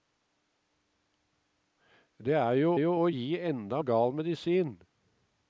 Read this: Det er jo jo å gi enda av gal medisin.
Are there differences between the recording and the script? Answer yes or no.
no